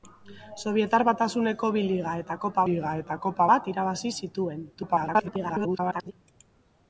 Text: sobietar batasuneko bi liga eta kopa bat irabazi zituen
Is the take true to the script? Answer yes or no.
no